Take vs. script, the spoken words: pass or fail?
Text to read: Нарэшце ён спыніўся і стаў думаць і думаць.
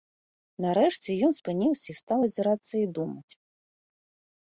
fail